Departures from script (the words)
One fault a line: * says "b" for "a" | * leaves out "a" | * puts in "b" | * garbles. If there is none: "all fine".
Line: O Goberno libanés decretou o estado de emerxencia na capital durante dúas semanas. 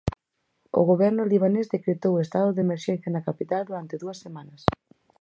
all fine